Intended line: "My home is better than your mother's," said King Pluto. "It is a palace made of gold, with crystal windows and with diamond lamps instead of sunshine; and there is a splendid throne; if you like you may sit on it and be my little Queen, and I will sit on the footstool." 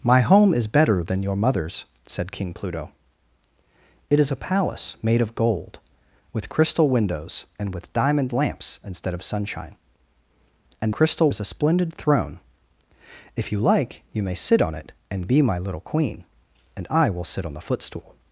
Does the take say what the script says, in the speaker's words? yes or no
no